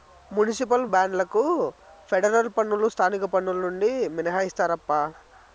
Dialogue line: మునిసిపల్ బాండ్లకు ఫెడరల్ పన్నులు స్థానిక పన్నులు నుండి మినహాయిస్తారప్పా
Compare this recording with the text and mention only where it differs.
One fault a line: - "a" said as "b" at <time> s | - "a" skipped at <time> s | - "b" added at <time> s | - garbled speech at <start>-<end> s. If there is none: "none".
none